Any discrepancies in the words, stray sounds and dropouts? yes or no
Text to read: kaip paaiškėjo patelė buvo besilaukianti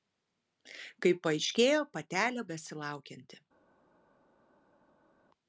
yes